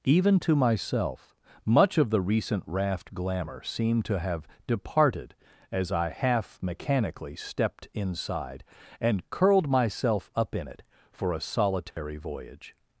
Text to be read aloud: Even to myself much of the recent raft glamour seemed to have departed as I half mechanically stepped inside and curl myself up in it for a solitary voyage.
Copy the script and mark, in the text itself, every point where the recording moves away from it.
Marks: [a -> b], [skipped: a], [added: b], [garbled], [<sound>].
Even to myself much of the recent raft glamour seemed to have departed as I half mechanically stepped inside and [curl -> curled] myself up in it for a solitary [dropout] voyage.